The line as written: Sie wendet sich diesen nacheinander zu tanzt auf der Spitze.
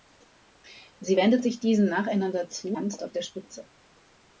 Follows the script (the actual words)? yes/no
yes